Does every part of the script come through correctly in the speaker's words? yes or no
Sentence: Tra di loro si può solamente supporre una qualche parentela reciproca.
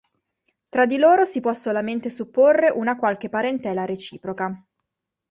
yes